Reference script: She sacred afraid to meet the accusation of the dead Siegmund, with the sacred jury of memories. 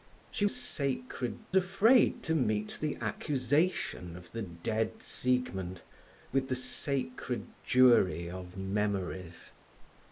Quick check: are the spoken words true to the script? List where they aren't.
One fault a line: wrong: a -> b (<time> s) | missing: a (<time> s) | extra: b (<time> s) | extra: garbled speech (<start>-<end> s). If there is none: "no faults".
no faults